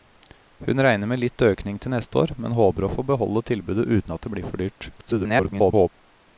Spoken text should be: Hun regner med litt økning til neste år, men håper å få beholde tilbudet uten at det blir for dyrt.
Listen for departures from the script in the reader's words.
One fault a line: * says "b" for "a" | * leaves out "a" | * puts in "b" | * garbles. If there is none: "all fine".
* garbles